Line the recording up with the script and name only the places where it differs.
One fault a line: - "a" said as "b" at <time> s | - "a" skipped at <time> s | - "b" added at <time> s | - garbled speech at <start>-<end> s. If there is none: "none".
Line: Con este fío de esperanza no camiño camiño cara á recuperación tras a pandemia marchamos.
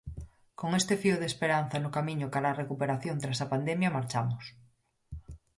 - "camiño" skipped at 2.3 s